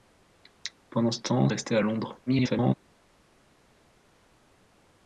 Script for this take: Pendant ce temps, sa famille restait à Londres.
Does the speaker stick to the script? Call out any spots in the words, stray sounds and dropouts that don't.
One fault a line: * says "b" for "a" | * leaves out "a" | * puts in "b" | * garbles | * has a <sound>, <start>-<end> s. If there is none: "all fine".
* leaves out "sa famille"
* garbles